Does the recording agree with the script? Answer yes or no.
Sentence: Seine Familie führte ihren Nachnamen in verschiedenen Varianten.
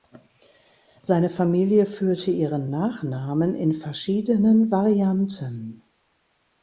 yes